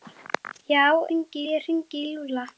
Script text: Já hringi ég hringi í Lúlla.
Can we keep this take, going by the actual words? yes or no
yes